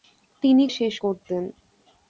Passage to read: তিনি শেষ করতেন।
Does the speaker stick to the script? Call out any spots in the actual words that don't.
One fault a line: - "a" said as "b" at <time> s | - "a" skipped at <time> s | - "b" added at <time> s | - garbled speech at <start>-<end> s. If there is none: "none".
none